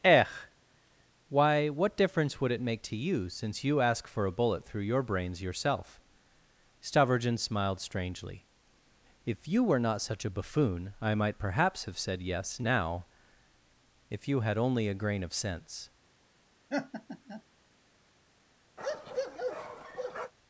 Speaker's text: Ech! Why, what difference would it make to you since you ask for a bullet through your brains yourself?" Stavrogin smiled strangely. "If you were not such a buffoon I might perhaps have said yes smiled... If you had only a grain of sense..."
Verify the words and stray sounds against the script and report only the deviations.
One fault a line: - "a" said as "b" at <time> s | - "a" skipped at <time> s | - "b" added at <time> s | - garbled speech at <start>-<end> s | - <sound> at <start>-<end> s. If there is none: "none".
- "smiled" said as "now" at 12.6 s
- laugh at 16.7-17.4 s
- bark at 18.8-20.3 s